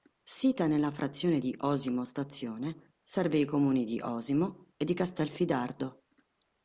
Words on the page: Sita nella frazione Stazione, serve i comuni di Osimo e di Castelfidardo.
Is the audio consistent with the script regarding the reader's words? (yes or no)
no